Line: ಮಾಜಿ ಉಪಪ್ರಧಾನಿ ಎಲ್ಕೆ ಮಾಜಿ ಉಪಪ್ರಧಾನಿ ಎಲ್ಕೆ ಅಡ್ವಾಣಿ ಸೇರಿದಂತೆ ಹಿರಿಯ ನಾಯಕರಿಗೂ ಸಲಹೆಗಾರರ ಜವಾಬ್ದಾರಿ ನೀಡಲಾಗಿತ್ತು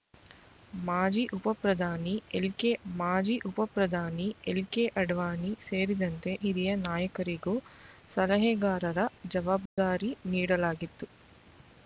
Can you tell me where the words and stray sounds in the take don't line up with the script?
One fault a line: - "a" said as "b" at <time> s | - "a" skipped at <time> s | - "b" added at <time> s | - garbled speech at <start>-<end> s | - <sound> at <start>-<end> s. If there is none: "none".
- dropout at 9.7-9.8 s